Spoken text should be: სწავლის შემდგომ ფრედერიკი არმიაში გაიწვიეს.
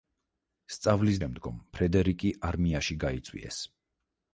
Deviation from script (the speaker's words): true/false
false